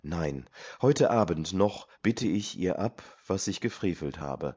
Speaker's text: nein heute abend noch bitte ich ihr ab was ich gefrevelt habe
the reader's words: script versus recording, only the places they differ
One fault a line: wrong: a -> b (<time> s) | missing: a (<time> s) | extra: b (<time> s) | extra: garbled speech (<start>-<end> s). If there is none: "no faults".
no faults